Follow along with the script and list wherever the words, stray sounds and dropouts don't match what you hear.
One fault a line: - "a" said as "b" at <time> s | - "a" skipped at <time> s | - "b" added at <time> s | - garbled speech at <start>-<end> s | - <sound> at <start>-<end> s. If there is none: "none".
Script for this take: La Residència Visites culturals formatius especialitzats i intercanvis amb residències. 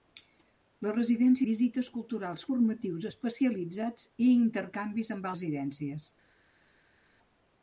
none